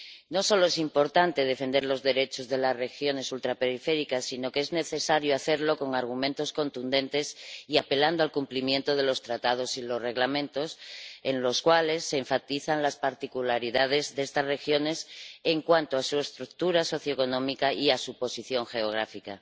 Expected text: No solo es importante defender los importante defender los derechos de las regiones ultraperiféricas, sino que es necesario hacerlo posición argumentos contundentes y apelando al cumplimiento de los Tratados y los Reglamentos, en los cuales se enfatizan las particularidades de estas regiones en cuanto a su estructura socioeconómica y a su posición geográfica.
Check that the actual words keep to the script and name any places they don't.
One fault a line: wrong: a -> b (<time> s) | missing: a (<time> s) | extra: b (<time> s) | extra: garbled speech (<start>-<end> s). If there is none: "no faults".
missing: importante defender los (2.0 s)
wrong: posición -> con (5.8 s)